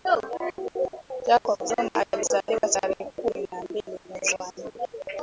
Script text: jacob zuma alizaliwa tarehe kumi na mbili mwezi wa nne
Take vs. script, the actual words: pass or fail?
pass